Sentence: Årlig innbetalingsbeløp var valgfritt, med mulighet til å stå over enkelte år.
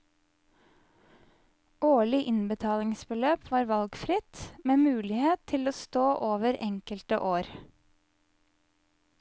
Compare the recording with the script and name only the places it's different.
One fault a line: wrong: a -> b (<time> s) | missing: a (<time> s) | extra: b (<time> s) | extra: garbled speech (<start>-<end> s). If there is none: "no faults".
no faults